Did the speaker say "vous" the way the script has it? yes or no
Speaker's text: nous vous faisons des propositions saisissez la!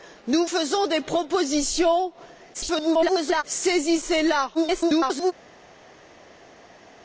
no